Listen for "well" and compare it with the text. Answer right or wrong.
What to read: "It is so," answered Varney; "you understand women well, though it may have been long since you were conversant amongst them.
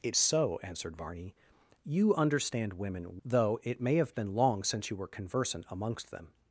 wrong